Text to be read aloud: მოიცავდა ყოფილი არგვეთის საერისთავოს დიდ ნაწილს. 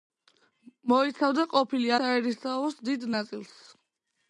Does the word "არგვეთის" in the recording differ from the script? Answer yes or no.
yes